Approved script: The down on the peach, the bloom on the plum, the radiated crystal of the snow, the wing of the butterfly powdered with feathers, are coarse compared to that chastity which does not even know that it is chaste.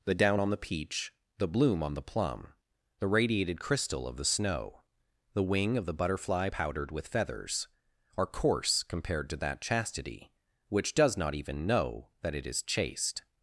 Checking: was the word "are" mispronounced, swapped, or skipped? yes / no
no